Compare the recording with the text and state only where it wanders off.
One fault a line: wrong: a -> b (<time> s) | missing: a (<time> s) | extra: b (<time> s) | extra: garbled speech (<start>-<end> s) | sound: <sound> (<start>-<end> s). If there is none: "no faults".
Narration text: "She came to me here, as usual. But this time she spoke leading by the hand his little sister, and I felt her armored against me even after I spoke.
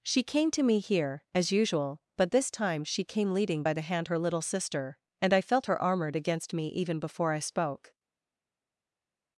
wrong: spoke -> came (3.0 s)
wrong: his -> her (4.1 s)
wrong: after -> before (7.0 s)